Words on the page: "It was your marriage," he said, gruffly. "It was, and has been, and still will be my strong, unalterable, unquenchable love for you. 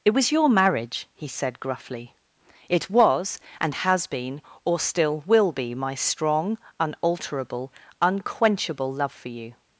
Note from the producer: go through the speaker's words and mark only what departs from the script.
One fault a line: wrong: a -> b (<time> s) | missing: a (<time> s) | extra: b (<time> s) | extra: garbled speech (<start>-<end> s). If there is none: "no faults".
wrong: and -> or (4.6 s)